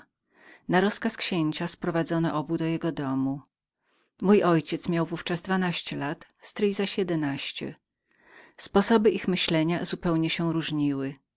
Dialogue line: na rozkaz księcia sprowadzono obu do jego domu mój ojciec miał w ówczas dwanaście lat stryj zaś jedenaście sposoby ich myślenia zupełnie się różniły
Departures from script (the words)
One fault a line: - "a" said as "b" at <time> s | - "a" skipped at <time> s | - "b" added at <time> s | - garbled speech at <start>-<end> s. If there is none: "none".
none